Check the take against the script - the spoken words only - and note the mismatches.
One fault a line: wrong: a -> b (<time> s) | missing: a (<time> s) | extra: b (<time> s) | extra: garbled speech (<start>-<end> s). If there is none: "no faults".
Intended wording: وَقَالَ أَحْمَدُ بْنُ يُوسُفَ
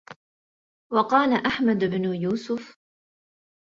no faults